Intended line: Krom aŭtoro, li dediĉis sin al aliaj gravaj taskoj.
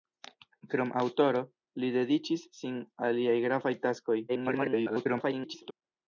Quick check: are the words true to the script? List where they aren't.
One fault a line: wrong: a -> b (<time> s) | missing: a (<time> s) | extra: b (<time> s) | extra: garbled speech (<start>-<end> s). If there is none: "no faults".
missing: al (2.8 s)
extra: garbled speech (4.3-5.7 s)